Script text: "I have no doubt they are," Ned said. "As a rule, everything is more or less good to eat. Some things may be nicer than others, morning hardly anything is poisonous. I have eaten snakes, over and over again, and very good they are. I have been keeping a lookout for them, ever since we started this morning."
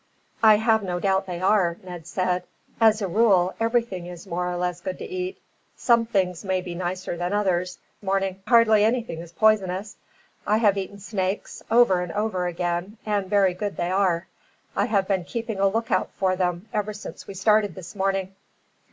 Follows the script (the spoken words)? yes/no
yes